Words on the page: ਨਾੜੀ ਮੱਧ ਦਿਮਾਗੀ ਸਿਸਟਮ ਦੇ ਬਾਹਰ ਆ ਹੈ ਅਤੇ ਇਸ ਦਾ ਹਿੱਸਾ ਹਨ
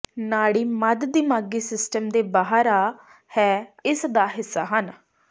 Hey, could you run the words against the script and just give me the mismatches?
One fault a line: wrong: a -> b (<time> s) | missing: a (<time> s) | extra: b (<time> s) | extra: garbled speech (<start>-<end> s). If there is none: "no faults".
missing: ਅਤੇ (3.6 s)